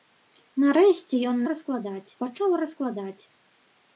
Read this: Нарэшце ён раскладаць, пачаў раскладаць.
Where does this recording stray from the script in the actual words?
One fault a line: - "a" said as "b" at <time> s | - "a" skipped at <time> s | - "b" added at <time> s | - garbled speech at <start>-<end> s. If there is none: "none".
none